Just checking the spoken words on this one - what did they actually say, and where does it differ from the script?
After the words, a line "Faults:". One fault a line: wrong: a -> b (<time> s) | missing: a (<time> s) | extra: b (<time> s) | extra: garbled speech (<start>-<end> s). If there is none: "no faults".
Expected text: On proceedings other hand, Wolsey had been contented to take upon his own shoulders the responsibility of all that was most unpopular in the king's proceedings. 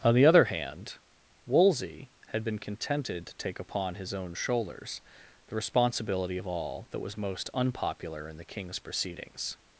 On the other hand, Wolsey had been contented to take upon his own shoulders the responsibility of all that was most unpopular in the king's proceedings.
Faults:
wrong: proceedings -> the (0.1 s)